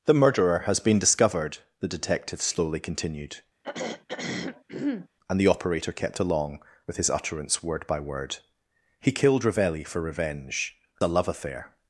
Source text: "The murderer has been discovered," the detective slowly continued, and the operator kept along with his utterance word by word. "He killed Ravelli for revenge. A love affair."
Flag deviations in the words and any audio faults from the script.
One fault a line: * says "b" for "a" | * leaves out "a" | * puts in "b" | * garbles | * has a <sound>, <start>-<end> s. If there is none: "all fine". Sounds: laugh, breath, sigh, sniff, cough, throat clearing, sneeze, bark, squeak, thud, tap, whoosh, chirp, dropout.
* has a throat clearing, 3.6-5.1 s